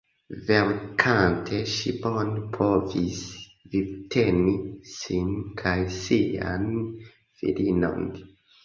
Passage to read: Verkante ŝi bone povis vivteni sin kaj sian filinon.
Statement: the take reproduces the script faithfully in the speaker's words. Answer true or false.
true